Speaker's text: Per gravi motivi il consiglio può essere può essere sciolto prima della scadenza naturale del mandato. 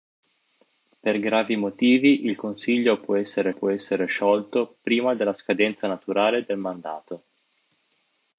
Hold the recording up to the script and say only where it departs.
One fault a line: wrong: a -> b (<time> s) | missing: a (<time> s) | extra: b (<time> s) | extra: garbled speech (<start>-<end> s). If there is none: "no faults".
no faults